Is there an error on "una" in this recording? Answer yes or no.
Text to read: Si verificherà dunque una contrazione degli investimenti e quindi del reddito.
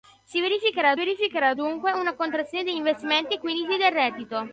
no